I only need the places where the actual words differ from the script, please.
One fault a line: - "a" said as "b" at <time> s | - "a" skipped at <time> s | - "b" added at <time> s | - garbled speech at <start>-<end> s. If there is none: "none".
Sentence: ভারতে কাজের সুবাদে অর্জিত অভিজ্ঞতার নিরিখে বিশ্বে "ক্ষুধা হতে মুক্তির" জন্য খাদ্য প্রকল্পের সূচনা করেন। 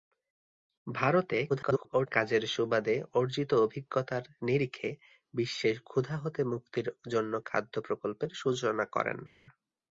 - garbled speech at 1.5-2.1 s